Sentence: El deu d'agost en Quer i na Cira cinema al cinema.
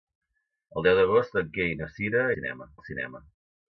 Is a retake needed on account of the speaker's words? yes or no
no